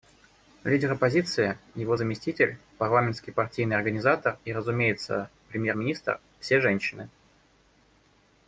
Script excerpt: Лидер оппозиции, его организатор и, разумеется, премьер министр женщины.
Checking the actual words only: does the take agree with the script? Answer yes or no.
no